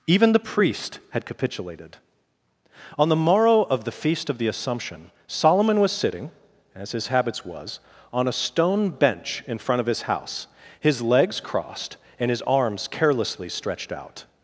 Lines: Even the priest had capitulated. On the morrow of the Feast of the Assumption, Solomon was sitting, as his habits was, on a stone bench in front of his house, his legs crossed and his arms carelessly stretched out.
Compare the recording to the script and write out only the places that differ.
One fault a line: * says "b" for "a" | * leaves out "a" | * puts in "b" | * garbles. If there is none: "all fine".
all fine